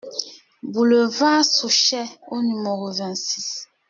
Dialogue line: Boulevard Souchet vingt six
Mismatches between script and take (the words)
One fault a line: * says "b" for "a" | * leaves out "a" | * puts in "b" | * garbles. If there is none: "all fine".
* puts in "au numéro"